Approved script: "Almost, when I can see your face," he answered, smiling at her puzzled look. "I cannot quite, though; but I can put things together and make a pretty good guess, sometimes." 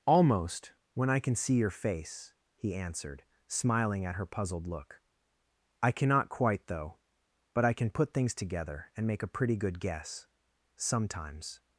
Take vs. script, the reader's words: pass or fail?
pass